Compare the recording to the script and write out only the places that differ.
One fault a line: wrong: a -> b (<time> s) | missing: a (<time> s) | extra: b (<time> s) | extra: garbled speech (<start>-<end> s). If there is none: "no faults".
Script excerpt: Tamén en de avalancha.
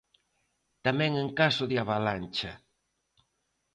extra: caso (1.4 s)